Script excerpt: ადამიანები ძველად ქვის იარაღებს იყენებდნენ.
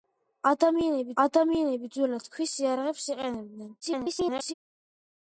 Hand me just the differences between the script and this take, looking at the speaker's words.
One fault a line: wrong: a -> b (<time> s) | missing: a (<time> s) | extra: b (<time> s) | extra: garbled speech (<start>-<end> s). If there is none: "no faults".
extra: ადამიანები (1.2 s)
extra: garbled speech (3.8-4.5 s)